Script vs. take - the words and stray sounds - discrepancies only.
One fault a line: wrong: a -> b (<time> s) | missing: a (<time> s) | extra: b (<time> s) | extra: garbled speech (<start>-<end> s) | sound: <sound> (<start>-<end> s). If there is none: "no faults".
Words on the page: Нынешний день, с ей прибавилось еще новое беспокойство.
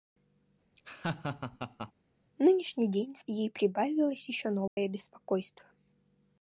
sound: laugh (0.8-1.9 s)
sound: dropout (4.7-4.8 s)